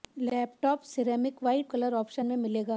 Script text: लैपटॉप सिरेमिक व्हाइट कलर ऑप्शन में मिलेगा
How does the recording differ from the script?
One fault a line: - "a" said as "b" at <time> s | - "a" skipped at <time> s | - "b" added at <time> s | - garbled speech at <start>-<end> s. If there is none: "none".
none